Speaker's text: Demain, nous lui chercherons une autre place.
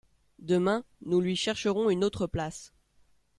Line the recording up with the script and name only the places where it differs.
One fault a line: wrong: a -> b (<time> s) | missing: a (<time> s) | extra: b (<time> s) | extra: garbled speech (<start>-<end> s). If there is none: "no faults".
no faults